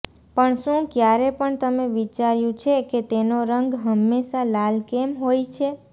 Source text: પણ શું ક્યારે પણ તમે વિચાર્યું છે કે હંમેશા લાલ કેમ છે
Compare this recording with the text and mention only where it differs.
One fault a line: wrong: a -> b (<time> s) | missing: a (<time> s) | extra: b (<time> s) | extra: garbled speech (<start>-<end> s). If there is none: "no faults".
extra: તેનો રંગ (3.1 s)
extra: હોય (5.2 s)